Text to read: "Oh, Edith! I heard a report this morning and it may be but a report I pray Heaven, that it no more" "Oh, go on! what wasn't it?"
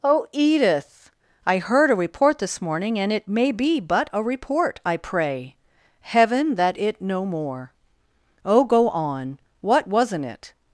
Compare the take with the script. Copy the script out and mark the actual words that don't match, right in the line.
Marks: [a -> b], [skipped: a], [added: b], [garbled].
"Oh, Edith! I heard a report this morning and it may be but a report I pray Heaven, that it no more" "Oh, go on! what wasn't it?"